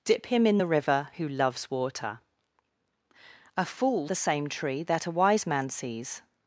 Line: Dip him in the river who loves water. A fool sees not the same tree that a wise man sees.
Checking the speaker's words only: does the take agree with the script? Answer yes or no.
no